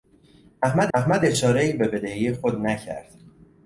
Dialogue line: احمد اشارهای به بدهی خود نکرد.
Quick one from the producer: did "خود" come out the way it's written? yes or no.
yes